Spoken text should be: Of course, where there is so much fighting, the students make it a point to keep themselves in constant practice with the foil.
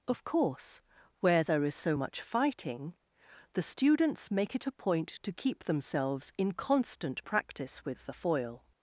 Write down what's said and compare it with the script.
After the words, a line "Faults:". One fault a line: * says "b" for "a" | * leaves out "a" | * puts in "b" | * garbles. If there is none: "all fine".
Of course, where there is so much fighting, the students make it a point to keep themselves in constant practice with the foil.
Faults:
all fine